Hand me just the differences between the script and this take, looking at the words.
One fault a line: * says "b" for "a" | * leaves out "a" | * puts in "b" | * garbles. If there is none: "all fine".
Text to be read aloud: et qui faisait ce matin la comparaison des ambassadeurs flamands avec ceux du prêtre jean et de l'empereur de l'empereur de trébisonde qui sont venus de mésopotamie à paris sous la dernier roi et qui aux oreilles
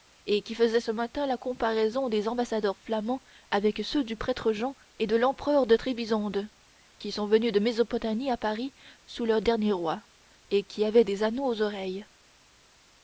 * leaves out "l'empereur de"
* says "le" for "la"
* puts in "avaient des anneaux"